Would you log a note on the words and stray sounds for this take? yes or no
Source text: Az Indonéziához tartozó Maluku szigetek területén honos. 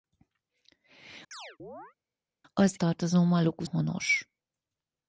yes